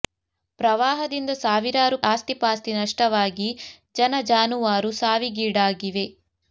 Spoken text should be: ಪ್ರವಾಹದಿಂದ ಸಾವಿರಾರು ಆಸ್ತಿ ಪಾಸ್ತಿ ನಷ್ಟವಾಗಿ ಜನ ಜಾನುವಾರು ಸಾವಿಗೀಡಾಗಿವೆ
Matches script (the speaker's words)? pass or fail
pass